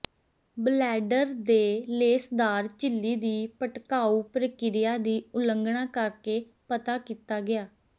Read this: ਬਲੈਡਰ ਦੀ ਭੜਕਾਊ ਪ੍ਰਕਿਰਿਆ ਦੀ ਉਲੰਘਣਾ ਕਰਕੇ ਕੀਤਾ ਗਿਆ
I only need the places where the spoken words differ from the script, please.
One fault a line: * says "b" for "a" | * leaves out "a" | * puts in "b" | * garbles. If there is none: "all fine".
* puts in "ਦੇ ਲੇਸਦਾਰ ਝਿੱਲੀ"
* puts in "ਪਤਾ"